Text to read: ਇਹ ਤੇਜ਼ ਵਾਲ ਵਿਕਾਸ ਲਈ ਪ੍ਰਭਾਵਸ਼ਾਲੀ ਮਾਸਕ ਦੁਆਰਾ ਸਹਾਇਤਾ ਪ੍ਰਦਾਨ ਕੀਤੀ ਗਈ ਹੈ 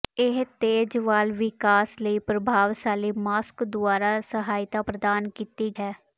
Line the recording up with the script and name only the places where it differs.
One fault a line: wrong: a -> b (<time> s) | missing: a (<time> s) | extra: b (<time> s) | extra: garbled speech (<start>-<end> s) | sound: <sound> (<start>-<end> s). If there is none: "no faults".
missing: ਗਈ (5.7 s)